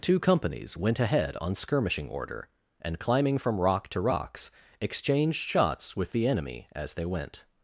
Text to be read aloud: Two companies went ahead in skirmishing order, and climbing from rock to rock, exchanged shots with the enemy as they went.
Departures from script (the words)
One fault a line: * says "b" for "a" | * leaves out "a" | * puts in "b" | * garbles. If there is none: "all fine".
* says "on" for "in"
* says "rocks" for "rock"